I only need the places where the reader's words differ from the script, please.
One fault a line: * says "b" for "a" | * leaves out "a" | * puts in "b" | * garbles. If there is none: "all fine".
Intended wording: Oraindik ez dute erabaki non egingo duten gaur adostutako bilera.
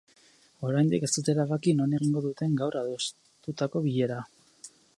all fine